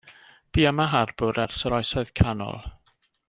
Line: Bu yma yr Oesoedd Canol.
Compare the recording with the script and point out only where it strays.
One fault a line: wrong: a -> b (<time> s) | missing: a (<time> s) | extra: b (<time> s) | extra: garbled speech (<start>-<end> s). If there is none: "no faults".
extra: harbwr ers (0.9 s)